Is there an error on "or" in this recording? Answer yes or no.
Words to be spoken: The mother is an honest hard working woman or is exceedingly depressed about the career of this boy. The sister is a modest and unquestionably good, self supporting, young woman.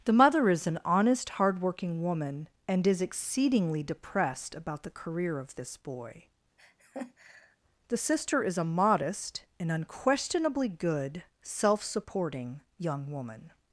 yes